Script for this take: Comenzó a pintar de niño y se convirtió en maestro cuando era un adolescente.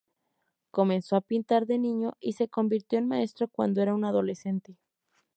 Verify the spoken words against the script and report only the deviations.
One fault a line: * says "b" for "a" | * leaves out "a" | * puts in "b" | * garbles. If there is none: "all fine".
all fine